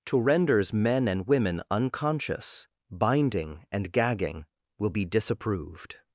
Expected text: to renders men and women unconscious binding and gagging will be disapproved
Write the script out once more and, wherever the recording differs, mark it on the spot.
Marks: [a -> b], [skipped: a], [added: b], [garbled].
to renders men and women unconscious binding and gagging will be disapproved